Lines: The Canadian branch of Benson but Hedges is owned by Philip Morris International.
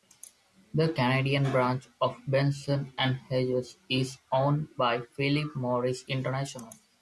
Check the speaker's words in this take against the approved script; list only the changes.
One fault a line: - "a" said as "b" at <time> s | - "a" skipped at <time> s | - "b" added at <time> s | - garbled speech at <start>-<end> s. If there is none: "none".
- "but" said as "and" at 3.0 s